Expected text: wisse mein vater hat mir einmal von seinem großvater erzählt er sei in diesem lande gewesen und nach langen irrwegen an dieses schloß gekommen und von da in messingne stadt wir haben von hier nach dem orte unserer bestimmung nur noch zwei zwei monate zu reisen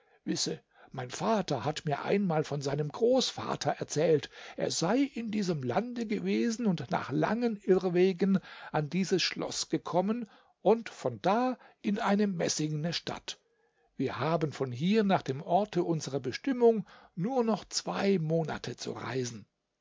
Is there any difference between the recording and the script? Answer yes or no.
yes